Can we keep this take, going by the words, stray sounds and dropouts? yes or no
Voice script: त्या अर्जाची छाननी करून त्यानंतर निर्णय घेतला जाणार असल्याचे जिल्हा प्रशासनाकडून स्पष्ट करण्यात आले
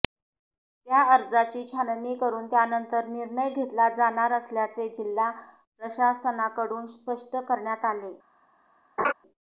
no